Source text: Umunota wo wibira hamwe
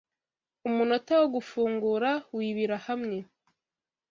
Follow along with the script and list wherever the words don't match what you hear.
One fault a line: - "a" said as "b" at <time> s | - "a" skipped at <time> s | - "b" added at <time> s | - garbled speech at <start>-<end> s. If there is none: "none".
- "gufungura" added at 1.4 s